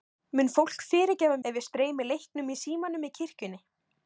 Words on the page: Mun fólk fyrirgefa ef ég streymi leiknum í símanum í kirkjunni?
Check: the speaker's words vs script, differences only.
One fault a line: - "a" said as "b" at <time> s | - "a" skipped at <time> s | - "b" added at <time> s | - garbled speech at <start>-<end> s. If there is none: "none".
none